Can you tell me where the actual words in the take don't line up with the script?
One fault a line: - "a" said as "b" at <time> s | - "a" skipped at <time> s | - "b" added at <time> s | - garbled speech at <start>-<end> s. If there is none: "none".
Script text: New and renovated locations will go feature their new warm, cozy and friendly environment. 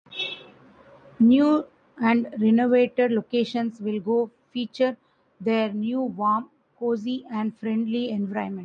none